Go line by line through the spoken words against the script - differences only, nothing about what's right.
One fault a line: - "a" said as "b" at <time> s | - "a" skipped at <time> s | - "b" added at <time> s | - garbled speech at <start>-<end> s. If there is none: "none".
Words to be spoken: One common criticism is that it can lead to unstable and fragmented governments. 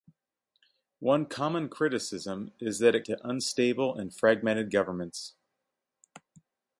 - "can lead" skipped at 3.0 s